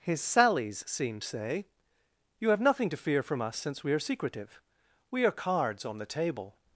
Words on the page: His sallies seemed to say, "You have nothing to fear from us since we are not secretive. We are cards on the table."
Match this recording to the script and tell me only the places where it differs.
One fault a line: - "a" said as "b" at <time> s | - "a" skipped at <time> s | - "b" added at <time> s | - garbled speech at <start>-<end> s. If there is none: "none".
- "to" skipped at 1.2 s
- "not" skipped at 4.0 s